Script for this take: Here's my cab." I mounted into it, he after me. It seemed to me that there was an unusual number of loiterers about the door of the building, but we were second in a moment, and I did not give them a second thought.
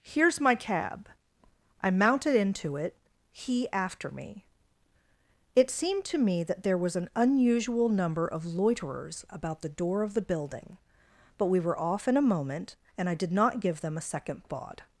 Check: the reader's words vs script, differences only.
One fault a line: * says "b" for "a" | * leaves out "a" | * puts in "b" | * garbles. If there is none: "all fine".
* says "off" for "second"